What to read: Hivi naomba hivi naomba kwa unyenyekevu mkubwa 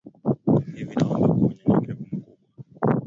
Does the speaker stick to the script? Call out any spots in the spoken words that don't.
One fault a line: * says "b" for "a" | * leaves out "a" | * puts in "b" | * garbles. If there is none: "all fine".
* leaves out "hivi naomba"